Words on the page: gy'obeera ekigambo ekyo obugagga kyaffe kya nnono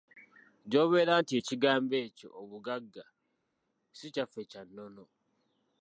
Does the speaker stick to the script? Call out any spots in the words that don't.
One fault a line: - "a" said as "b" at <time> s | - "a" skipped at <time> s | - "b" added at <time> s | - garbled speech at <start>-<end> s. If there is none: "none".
- "nti" added at 1.2 s
- "si" added at 4.0 s